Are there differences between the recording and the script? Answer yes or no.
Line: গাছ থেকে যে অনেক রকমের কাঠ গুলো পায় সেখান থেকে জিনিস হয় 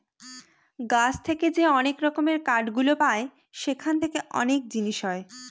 yes